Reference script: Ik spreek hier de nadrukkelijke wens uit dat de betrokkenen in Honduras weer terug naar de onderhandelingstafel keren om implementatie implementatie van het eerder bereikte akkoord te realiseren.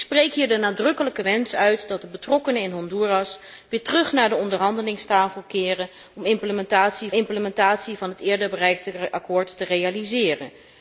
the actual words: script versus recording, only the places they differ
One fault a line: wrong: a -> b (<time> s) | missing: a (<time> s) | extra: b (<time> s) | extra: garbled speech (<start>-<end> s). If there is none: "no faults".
no faults